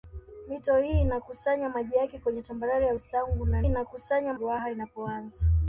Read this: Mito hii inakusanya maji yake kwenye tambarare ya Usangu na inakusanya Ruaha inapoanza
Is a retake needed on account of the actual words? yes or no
no